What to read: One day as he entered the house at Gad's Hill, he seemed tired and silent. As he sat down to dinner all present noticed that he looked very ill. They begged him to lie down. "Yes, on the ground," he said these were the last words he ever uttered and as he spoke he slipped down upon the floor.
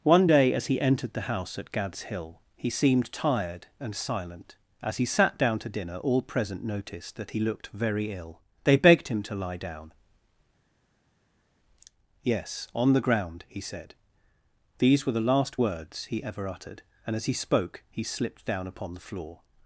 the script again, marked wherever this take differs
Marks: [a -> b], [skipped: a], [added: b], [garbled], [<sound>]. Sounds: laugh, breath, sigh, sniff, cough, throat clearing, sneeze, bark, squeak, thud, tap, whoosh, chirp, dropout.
One day as he entered the house at Gad's Hill, he seemed tired and silent. As he sat down to dinner all present noticed that he looked very ill. They begged him to lie down. "Yes, on the ground," he said these were the last words he ever uttered and as he spoke he slipped down upon the floor.